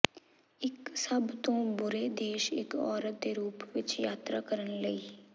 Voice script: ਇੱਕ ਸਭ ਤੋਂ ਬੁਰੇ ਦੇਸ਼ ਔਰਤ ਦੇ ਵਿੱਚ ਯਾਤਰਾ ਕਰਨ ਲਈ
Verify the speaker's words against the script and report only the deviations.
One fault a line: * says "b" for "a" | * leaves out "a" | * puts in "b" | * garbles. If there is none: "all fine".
* puts in "ਇੱਕ"
* puts in "ਰੂਪ"